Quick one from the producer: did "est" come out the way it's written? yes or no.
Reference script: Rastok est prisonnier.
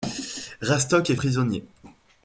yes